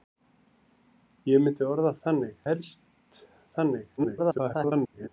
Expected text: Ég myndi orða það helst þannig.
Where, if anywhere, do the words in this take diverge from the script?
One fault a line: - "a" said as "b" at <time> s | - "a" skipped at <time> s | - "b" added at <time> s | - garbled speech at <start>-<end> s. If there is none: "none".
- "það" said as "þannig" at 2.1 s
- garbled speech at 4.0-5.1 s